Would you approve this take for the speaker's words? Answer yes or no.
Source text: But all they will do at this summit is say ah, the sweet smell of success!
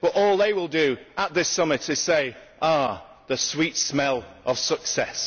yes